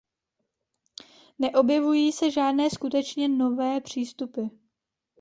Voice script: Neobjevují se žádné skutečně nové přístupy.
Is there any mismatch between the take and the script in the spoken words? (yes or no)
no